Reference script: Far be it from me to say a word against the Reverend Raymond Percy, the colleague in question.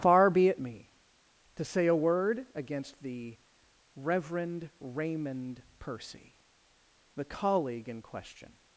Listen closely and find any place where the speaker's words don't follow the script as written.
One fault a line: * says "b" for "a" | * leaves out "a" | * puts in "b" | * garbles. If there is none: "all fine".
* leaves out "from"